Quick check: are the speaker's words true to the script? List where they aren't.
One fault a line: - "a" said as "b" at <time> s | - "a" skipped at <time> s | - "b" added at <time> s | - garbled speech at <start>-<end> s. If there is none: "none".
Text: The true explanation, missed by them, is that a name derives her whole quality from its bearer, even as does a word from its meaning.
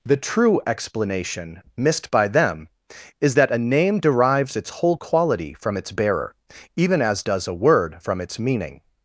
- "her" said as "its" at 4.6 s